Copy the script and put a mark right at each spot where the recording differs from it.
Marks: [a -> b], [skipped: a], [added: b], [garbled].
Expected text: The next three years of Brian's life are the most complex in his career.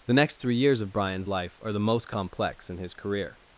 The next three years of Brian's life are the most complex in his career.